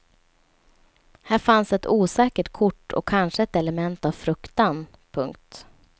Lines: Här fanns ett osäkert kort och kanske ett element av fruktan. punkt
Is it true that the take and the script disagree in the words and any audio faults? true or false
false